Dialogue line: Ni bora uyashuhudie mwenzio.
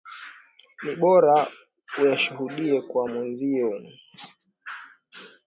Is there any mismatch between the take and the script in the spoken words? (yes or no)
yes